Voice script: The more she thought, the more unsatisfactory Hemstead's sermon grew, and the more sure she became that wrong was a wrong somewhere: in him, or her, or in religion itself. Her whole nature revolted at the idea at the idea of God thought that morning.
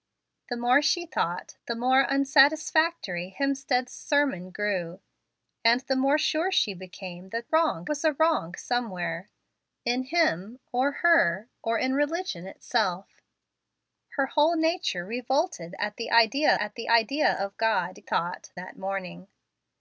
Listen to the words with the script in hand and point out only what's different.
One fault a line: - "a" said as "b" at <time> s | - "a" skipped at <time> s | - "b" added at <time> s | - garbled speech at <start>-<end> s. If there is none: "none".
none